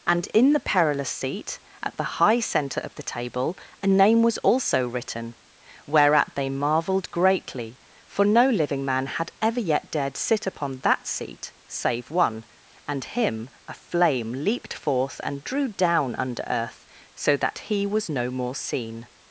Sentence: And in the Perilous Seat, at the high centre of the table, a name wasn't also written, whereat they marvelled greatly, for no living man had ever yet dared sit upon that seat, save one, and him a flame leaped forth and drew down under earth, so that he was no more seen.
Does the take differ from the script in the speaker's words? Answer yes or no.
yes